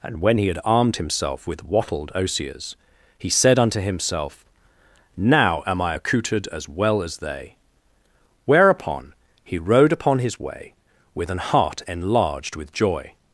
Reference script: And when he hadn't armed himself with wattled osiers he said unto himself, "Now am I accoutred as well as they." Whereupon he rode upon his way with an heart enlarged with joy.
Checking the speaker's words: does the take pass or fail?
fail